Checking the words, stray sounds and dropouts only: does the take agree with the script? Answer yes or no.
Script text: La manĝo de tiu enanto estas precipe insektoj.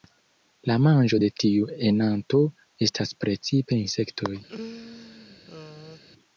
no